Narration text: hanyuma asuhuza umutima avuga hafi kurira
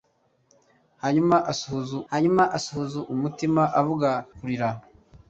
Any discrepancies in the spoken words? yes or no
yes